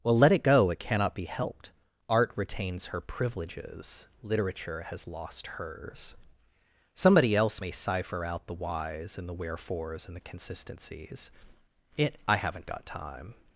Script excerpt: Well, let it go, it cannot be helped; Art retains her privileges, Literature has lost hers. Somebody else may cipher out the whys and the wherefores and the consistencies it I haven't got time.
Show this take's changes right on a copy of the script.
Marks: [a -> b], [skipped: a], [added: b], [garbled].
Well, let it go, it cannot be helped; Art retains her privileges, Literature has lost hers. Somebody else may cipher out the whys and the wherefores and the consistencies it I haven't got time.